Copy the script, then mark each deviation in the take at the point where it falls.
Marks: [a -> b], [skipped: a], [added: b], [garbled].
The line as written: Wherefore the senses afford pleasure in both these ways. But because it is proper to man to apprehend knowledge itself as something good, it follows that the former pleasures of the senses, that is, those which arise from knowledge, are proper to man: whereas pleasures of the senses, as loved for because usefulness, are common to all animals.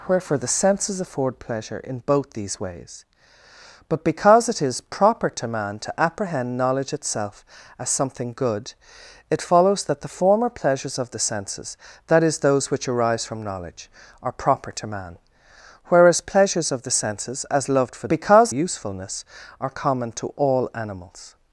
Wherefore the senses afford pleasure in both these ways. But because it is proper to man to apprehend knowledge itself as something good, it follows that the former pleasures of the senses, that is, those which arise from knowledge, are proper to man: whereas pleasures of the senses, as loved for because usefulness, are common to all animals.